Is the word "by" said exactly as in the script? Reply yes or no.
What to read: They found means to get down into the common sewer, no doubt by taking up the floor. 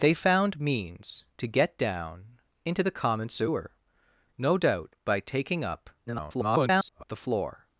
yes